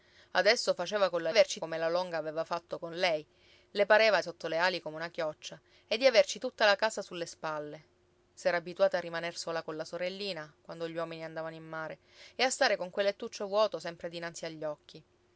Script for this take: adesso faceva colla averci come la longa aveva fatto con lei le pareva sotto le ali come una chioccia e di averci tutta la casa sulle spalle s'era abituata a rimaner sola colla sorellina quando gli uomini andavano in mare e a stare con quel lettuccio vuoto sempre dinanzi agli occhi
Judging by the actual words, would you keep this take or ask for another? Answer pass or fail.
pass